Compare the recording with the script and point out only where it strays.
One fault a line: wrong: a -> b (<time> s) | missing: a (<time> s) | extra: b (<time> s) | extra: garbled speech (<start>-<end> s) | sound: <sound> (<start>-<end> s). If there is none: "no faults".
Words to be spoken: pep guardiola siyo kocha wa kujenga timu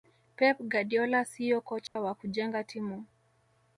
sound: dropout (1.9-2.0 s)